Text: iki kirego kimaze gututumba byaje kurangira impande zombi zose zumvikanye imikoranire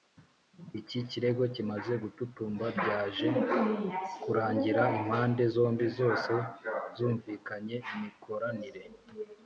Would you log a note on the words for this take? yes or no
no